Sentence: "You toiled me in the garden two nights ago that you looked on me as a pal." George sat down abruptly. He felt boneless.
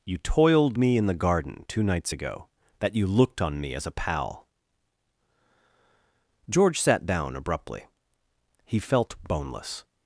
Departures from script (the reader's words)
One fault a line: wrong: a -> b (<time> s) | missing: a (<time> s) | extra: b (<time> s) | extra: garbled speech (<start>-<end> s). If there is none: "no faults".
no faults